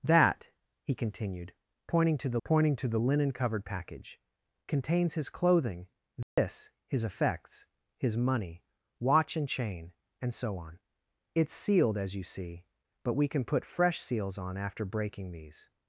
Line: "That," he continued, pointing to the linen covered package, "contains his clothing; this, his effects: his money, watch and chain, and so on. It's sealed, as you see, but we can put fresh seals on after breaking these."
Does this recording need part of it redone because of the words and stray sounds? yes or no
yes